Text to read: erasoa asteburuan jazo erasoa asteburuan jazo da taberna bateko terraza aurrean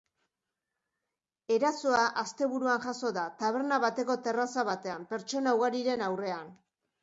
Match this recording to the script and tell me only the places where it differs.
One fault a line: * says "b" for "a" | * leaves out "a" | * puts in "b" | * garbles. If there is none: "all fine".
* leaves out "erasoa asteburuan jazo"
* puts in "batean pertsona ugariren"